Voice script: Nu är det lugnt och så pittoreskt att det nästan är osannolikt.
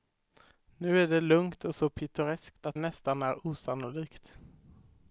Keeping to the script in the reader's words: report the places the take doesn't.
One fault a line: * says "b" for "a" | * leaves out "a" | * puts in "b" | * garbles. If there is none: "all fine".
* leaves out "det"